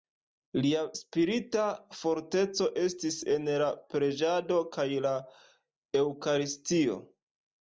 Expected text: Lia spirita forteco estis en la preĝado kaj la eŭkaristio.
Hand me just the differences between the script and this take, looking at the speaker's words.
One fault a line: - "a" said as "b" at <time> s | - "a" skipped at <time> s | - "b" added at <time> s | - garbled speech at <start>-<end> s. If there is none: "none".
none